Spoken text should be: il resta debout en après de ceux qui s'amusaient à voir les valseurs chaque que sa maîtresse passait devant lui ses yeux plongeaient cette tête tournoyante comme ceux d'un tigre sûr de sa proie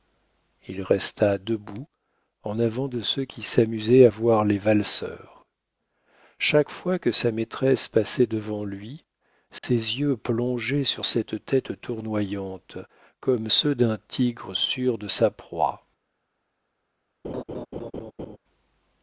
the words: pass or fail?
fail